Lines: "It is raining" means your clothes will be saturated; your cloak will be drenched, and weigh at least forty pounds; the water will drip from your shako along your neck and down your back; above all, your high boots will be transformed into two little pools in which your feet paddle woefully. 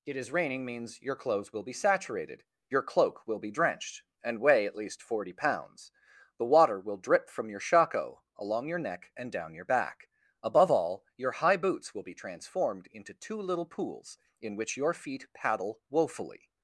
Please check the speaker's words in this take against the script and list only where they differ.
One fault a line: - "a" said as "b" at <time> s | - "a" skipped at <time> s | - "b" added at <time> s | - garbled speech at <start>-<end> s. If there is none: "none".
none